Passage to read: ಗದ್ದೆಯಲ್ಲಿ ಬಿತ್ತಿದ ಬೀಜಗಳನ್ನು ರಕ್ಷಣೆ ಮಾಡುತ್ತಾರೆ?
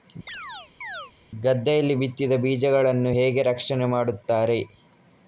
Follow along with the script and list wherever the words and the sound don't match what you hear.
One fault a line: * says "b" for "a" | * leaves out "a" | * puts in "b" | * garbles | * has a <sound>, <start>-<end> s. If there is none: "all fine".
* has a chirp, 0.3-1.1 s
* puts in "ಹೇಗೆ"